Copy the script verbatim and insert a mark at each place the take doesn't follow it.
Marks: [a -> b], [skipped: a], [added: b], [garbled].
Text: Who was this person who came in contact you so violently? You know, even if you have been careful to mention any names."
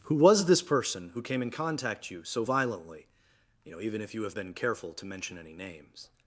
Who was this person who came in contact you so violently? You know, even if you have been careful to mention any names."